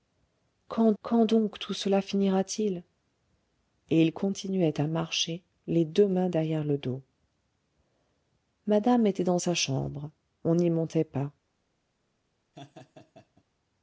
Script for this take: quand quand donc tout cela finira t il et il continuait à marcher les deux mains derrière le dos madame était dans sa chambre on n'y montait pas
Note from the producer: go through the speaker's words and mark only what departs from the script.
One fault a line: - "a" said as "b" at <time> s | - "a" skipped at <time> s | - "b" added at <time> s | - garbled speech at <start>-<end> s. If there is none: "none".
none